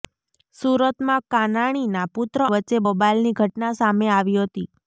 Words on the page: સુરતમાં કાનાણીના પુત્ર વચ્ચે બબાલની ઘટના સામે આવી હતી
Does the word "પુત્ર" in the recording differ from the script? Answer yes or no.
no